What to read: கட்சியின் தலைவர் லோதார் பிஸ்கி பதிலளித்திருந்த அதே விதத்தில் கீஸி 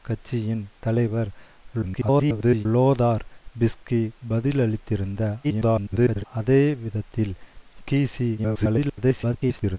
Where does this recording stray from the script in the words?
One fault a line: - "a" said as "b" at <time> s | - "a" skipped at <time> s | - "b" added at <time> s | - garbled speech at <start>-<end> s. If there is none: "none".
- garbled speech at 1.8-2.7 s
- garbled speech at 5.4-6.2 s
- garbled speech at 8.4-9.8 s